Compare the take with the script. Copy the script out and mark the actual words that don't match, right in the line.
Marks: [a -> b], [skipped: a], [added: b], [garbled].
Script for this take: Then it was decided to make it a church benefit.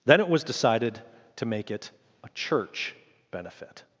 Then it was decided to make it a church benefit.